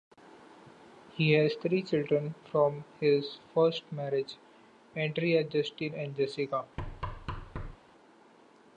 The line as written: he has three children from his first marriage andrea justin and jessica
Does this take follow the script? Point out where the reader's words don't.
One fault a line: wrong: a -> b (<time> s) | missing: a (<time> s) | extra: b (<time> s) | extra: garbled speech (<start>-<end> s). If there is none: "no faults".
no faults